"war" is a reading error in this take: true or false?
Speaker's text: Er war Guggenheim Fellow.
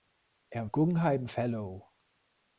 true